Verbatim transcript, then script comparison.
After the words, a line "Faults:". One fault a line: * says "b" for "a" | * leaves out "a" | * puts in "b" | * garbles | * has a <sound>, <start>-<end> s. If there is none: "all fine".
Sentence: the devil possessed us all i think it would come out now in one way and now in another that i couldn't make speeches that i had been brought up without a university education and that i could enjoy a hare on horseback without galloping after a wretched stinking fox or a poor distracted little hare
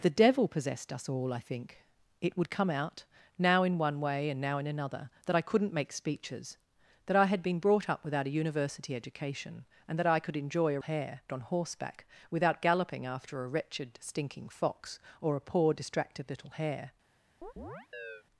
the devil possessed us all i think it would come out now in one way and now in another that i couldn't make speeches that i had been brought up without a university education and that i could enjoy a hare on horseback without galloping after a wretched stinking fox or a poor distracted little hare
Faults:
* has a chirp, 17.4-18.2 s